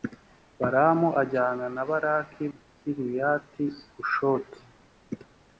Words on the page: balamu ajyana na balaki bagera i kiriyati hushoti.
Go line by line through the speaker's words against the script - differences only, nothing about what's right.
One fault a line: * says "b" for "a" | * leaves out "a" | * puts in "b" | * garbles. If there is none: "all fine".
* leaves out "bagera"